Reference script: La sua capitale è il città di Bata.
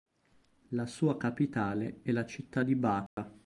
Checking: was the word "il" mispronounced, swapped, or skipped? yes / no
yes